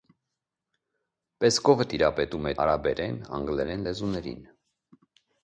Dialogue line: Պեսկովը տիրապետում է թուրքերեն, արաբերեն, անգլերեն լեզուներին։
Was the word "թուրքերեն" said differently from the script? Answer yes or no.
yes